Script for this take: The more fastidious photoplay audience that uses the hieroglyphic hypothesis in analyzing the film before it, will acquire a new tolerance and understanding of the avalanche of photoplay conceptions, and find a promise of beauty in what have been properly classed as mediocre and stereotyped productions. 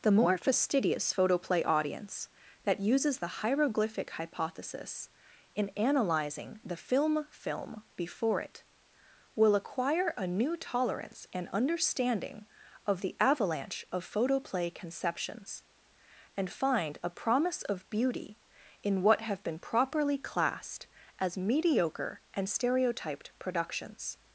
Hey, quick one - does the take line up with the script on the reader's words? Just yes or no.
no